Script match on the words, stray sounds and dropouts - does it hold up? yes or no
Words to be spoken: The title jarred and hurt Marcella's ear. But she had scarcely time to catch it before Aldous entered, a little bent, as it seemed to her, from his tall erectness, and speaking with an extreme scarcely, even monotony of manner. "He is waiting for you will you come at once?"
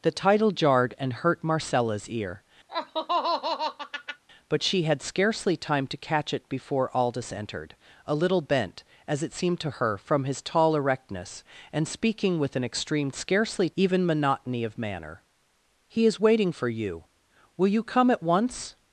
no